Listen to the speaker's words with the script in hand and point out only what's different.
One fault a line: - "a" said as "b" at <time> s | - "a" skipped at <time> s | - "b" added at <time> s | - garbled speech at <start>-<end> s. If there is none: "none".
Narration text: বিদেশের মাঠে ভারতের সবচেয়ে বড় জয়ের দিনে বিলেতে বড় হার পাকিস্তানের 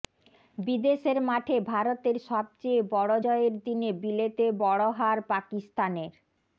none